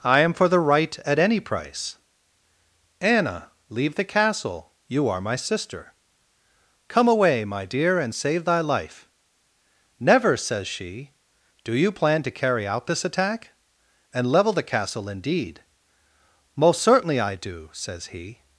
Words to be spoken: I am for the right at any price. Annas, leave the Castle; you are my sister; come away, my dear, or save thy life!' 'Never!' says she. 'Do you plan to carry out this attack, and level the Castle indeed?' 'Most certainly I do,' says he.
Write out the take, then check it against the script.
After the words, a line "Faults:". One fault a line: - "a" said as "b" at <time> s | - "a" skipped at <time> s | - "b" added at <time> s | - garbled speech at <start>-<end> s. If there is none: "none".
I am for the right at any price. Anna, leave the Castle; you are my sister; come away, my dear, and save thy life!' 'Never!' says she. 'Do you plan to carry out this attack, and level the Castle indeed?' 'Most certainly I do,' says he.
Faults:
- "Annas" said as "Anna" at 3.0 s
- "or" said as "and" at 8.0 s